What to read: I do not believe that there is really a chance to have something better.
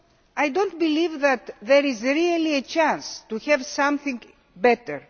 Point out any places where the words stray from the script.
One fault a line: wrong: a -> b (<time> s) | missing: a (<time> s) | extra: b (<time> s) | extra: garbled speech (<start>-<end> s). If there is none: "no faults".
no faults